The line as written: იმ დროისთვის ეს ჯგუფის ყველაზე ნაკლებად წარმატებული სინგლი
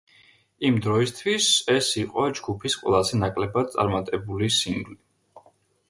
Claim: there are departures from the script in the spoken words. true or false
true